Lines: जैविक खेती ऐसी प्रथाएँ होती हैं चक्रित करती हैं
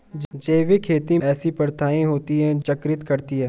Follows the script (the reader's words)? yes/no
yes